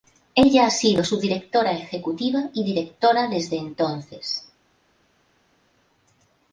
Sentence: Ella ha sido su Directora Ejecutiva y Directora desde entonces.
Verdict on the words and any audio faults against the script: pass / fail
pass